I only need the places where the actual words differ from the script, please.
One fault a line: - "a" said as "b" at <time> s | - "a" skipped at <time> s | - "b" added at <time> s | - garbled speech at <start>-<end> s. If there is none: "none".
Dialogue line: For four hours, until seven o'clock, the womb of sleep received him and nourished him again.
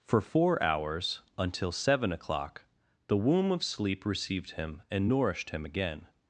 none